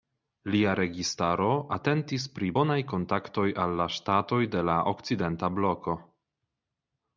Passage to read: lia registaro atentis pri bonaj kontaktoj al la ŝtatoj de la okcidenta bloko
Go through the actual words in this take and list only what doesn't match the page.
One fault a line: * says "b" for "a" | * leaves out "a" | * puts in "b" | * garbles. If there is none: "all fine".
all fine